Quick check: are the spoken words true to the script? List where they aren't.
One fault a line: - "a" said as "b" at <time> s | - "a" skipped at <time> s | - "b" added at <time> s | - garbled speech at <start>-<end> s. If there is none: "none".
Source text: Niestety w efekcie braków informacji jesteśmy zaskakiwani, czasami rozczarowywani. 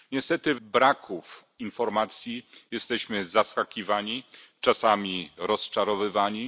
- "efekcie" skipped at 0.6 s